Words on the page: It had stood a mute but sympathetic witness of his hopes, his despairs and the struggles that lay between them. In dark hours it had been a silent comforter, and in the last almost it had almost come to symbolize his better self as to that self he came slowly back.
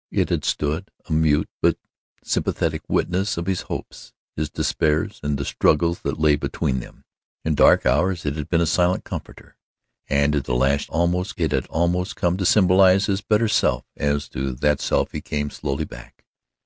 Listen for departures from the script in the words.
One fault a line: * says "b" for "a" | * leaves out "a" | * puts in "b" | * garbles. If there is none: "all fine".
all fine